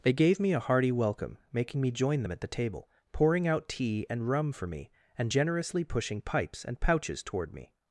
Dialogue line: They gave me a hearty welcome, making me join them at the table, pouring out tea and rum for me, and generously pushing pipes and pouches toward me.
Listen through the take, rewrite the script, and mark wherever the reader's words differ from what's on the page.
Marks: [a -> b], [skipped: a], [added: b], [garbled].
They gave me a hearty welcome, making me join them at the table, pouring out tea and rum for me, and generously pushing pipes and pouches toward me.